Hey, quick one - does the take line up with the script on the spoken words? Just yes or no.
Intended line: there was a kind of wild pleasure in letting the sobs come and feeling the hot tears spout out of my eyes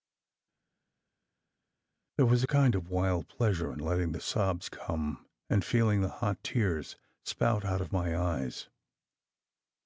yes